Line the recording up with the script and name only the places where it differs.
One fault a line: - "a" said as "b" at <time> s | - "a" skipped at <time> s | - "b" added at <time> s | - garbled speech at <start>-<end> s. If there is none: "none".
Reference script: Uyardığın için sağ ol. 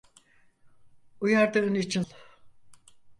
- "sağ" skipped at 2.0 s